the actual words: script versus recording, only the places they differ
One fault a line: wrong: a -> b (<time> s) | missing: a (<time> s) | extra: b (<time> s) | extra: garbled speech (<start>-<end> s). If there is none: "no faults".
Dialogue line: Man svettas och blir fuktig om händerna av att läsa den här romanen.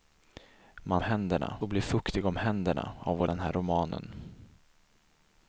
wrong: svettas -> händerna (1.0 s)
missing: läsa (3.3 s)